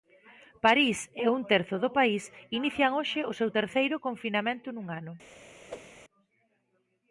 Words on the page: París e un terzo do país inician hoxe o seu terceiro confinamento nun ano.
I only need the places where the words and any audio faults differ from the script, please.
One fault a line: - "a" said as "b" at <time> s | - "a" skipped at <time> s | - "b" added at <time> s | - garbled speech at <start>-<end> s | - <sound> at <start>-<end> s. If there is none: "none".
- whoosh at 5.7-5.9 s